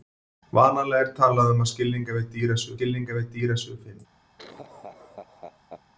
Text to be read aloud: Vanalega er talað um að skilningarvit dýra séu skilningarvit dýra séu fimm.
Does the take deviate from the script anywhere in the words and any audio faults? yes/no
yes